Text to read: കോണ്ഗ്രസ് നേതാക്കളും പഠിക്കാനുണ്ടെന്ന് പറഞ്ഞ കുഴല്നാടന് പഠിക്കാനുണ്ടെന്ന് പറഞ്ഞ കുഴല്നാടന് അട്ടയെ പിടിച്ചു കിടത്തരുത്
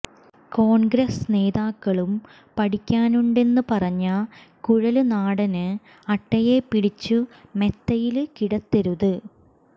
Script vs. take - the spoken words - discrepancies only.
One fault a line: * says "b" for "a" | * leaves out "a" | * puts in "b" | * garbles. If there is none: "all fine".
* leaves out "പഠിക്കാനുണ്ടെന്ന് പറഞ്ഞ കുഴല്നാടന്"
* puts in "മെത്തയില്"